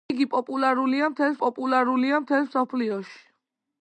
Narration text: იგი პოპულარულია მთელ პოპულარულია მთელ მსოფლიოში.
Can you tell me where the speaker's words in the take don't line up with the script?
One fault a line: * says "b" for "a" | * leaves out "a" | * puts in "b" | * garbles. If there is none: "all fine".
all fine